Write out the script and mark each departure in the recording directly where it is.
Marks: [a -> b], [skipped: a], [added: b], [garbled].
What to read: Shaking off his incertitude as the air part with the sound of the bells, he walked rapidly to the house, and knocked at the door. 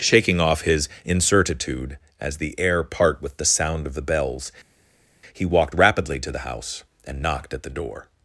Shaking off his incertitude as the air part with the sound of the bells, he walked rapidly to the house, and knocked at the door.